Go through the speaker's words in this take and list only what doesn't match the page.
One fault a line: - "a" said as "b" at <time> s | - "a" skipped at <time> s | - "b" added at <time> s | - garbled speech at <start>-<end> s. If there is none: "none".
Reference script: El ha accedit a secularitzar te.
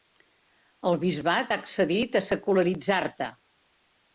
- "bisbat" added at 1.0 s